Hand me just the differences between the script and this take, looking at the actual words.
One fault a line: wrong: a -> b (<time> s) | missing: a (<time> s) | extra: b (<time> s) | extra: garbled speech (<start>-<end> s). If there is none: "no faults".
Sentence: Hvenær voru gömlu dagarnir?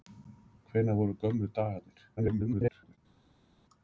extra: garbled speech (2.2-3.0 s)